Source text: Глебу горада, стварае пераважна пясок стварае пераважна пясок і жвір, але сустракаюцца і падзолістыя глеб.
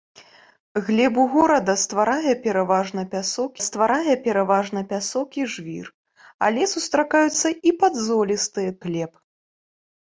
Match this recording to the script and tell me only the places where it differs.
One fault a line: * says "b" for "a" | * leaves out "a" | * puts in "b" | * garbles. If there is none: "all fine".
all fine